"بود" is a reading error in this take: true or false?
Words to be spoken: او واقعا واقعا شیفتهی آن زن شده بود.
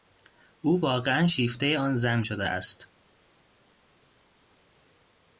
true